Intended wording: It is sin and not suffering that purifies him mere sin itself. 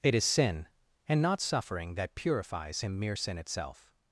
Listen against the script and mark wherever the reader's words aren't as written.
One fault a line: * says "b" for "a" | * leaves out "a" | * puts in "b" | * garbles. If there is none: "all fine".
all fine